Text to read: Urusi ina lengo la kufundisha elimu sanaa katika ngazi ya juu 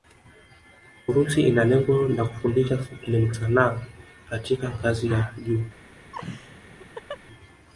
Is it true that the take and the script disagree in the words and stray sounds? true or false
true